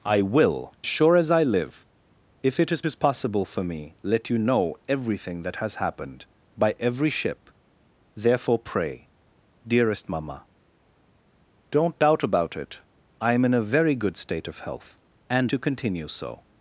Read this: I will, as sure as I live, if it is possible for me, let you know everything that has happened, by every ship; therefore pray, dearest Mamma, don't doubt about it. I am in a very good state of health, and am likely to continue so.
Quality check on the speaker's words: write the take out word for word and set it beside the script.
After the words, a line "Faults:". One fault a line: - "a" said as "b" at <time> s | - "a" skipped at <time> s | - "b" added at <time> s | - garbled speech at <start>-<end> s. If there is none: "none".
I will, sure as I live, if it is is possible for me, let you know everything that has happened, by every ship; therefore pray, dearest Mamma, don't doubt about it. I am in a very good state of health, and to continue so.
Faults:
- "as" skipped at 0.7 s
- "is" added at 2.8 s
- "am likely" skipped at 15.5 s